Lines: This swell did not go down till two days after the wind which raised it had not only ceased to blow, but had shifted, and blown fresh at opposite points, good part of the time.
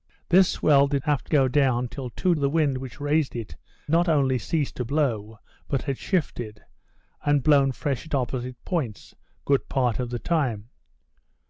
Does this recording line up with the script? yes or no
no